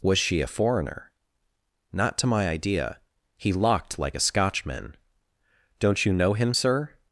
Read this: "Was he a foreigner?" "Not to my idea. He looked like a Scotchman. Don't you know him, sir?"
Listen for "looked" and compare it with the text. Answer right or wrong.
wrong